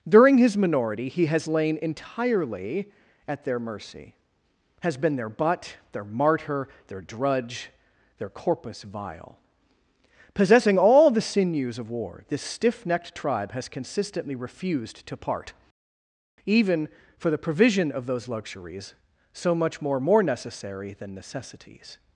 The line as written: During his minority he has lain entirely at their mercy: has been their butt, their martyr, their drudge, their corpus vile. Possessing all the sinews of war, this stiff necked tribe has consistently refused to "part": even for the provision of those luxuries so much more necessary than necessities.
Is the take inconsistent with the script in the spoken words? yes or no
yes